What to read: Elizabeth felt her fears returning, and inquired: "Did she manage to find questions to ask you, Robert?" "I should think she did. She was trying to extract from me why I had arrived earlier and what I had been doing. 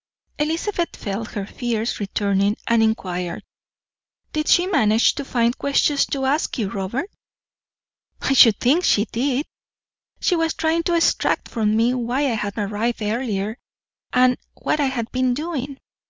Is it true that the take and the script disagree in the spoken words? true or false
false